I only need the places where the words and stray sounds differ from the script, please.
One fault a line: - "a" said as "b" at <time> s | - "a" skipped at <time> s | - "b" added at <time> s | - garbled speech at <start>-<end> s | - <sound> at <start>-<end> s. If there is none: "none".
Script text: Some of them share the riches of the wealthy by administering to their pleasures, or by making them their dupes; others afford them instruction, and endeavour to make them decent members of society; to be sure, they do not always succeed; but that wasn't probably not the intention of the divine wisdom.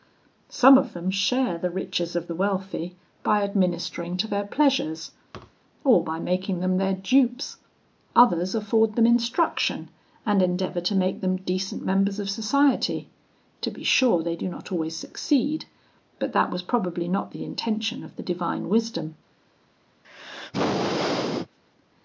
- thud at 5.3-5.6 s
- "wasn't" said as "was" at 16.5 s
- sneeze at 20.0-21.6 s